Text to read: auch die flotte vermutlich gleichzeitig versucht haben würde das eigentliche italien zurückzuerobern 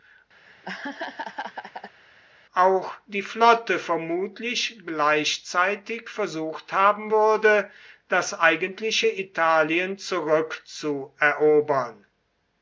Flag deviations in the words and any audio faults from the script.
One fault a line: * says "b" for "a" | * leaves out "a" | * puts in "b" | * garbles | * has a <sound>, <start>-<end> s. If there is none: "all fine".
* has a laugh, 0.4-2.0 s